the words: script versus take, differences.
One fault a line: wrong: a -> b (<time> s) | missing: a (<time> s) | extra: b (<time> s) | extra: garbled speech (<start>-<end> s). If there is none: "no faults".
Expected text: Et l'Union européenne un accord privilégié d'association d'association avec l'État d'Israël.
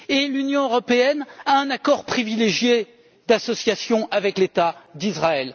extra: a (1.4 s)
missing: d'association (4.1 s)